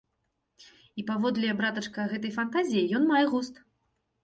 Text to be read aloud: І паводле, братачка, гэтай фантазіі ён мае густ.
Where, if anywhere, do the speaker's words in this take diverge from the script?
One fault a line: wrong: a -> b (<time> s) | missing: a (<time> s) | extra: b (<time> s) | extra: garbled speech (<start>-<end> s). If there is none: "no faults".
no faults